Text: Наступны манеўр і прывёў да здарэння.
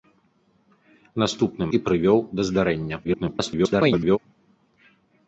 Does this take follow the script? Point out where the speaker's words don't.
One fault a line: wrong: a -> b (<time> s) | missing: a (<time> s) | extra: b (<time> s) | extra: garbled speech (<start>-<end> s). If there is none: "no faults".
missing: манеўр (1.7 s)
extra: garbled speech (3.0-4.2 s)